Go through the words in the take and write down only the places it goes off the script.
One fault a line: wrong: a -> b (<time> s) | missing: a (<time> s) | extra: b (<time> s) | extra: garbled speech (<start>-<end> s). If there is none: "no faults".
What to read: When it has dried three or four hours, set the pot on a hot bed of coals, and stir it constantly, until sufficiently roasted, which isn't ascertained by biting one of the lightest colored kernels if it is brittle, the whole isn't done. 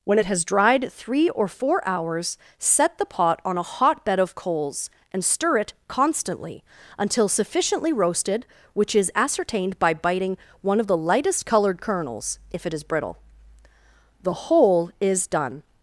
wrong: isn't -> is (8.9 s)
wrong: isn't -> is (15.0 s)